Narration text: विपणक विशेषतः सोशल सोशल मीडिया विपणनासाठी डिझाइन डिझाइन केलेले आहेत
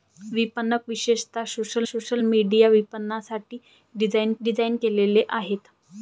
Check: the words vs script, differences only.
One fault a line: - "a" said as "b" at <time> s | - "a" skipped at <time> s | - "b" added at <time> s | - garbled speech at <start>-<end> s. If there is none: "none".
none